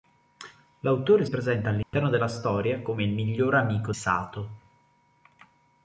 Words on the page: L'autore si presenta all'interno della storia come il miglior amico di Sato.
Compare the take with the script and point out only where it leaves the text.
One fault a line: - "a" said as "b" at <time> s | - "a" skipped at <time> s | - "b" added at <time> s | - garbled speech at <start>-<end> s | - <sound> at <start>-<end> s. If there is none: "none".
- "si" skipped at 1.3 s
- dropout at 1.8-1.9 s
- "di" skipped at 3.9 s